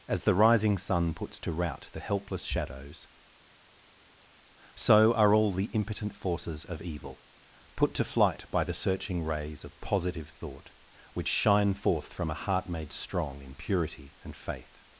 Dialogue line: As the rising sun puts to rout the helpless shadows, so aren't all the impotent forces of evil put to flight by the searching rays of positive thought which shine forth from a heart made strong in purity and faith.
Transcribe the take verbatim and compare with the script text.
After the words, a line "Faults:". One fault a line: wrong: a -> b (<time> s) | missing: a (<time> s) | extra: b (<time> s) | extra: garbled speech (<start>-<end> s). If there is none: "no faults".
As the rising sun puts to rout the helpless shadows, so are all the impotent forces of evil put to flight by the searching rays of positive thought which shine forth from a heart made strong in purity and faith.
Faults:
wrong: aren't -> are (5.1 s)